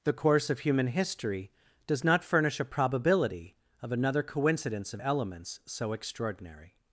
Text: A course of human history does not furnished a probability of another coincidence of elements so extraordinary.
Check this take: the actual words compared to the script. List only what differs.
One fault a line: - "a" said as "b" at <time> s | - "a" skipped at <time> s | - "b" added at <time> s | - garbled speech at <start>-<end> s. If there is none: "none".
- "A" said as "The" at 0.0 s
- "furnished" said as "furnish" at 2.2 s